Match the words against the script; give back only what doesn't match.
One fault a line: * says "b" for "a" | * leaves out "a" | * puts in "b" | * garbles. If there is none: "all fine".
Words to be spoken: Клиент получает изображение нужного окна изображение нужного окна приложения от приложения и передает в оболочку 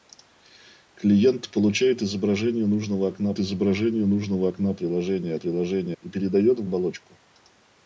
all fine